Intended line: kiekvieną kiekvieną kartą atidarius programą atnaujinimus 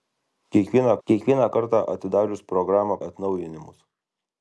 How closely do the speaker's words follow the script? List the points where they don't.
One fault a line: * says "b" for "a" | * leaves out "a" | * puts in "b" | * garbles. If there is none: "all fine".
all fine